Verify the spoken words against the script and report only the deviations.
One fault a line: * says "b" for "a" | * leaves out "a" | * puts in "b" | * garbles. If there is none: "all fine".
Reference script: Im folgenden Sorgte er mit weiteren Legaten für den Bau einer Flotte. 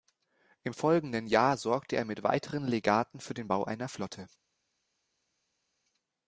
* puts in "Jahr"